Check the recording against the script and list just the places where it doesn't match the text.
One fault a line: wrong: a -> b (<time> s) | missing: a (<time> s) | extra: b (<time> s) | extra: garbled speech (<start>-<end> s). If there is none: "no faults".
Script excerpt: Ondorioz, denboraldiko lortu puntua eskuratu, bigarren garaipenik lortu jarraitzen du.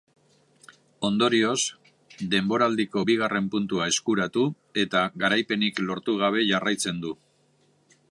wrong: lortu -> bigarren (3.1 s)
wrong: bigarren -> eta (4.8 s)
extra: gabe (6.2 s)